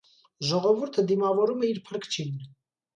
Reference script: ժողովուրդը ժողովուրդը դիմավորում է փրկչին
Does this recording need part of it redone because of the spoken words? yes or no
yes